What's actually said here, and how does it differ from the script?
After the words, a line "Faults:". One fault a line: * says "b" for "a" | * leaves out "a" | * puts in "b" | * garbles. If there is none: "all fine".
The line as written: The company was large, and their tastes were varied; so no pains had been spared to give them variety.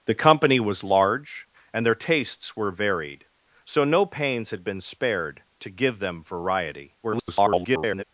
The company was large, and their tastes were varied; so no pains had been spared to give them variety. [garbled]
Faults:
* garbles